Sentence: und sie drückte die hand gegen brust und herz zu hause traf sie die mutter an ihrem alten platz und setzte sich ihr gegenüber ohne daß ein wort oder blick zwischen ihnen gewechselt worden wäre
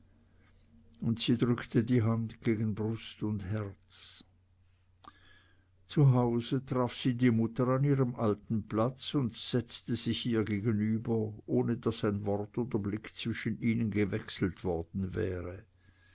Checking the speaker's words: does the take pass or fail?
pass